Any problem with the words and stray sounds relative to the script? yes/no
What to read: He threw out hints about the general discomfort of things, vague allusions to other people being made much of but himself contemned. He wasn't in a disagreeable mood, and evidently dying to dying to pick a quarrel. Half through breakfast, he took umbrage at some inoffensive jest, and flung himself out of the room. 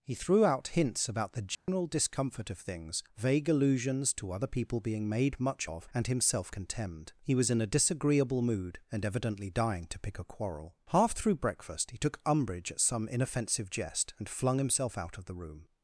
yes